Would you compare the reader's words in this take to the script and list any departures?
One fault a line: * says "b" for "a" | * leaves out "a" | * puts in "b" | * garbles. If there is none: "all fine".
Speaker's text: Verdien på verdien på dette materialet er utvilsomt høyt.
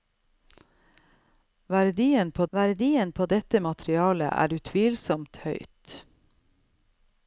all fine